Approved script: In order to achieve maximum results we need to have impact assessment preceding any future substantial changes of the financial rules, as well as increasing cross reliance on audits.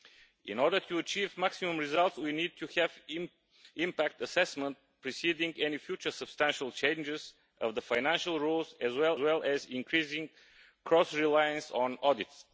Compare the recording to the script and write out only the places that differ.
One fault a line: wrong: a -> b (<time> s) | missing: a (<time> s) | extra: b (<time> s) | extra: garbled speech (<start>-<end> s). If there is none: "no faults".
extra: well (9.2 s)